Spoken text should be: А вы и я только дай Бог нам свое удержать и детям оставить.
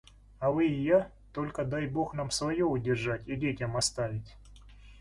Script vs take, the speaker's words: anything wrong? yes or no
no